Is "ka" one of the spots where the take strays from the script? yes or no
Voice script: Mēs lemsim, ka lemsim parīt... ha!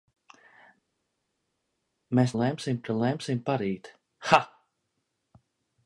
no